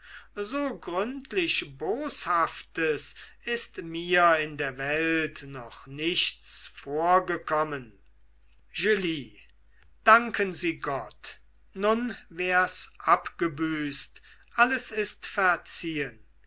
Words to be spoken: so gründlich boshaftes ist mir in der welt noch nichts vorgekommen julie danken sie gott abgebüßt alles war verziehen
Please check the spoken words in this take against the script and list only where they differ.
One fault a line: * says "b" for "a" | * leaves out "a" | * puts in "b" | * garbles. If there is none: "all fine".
* puts in "nun wär's"
* says "ist" for "war"